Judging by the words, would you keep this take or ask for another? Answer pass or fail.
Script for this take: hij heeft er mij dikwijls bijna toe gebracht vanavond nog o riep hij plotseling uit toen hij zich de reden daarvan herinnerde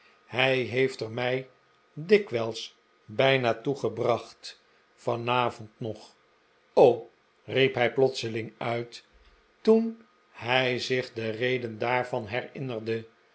pass